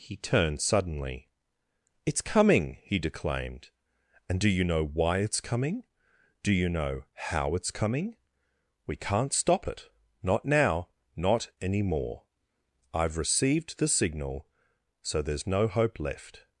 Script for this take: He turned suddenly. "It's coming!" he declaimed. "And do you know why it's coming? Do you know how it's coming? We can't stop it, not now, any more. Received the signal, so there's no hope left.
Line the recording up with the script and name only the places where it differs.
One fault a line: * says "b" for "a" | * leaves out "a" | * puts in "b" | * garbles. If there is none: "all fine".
* puts in "not"
* puts in "I've"